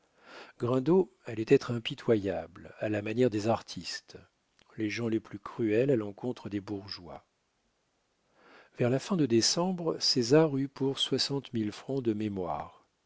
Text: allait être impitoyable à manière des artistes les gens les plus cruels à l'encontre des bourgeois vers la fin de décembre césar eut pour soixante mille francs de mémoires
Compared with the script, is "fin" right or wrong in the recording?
right